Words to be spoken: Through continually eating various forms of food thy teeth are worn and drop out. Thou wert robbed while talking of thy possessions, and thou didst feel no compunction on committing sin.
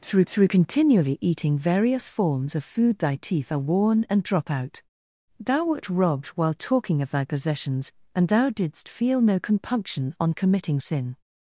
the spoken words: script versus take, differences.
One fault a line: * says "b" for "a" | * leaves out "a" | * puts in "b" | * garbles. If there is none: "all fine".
* puts in "through"